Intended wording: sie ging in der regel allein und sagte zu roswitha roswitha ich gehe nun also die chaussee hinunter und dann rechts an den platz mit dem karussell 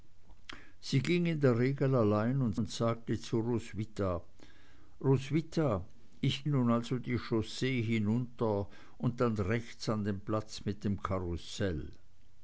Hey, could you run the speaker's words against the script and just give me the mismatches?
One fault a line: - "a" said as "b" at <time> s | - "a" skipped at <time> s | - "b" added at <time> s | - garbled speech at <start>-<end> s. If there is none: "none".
- "und" added at 2.5 s
- "gehe" skipped at 6.4 s